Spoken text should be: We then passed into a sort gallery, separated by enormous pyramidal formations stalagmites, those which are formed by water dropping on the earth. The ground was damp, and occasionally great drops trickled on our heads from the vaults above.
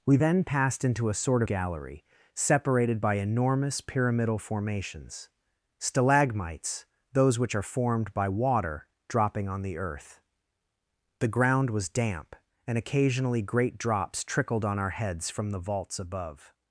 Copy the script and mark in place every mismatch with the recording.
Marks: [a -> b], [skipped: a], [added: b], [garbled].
We then passed into a sort gallery, separated by enormous pyramidal formations stalagmites, those which are formed by water dropping on the earth. The ground was damp, and occasionally great drops trickled on our heads from the vaults above.